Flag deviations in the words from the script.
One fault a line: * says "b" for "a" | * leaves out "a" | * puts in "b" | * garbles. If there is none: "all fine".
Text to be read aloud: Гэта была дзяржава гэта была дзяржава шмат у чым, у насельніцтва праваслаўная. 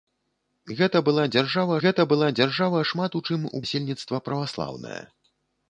all fine